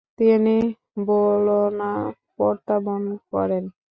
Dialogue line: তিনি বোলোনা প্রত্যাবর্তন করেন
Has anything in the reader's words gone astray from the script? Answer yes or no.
no